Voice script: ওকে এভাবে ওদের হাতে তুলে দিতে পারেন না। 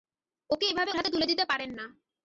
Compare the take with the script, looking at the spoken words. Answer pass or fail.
fail